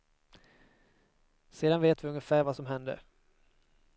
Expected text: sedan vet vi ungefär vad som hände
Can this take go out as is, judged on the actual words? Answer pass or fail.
pass